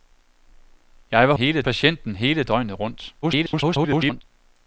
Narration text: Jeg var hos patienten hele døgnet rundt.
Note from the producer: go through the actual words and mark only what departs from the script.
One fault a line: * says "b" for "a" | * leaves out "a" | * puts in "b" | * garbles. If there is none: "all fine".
* says "hele" for "hos"
* garbles